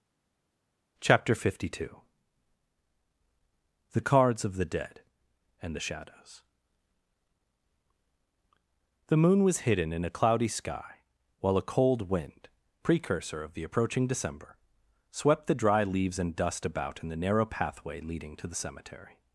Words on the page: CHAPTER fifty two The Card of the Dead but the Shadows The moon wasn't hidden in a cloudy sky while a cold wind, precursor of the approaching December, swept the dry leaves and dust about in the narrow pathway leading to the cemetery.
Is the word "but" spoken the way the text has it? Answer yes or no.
no